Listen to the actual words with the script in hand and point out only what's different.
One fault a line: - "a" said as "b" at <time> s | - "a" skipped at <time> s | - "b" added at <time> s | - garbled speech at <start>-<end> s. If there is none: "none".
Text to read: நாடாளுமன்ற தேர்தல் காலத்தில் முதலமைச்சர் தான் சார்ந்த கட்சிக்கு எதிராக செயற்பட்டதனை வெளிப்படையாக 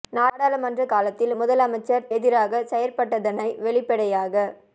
- "தேர்தல்" skipped at 0.8 s
- "தான் சார்ந்த கட்சிக்கு" skipped at 2.1 s